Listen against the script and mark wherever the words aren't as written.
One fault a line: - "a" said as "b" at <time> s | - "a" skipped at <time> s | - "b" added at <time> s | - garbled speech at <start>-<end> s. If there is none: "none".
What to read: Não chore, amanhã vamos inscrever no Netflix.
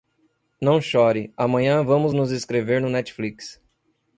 - "nos" added at 2.1 s